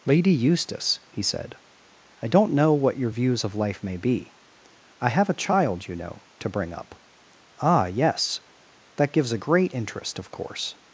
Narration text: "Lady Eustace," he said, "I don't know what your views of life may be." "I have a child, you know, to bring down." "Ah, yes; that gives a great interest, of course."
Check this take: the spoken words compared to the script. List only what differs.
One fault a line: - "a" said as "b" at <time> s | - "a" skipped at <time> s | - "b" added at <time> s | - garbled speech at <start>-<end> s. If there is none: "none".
- "down" said as "up" at 6.7 s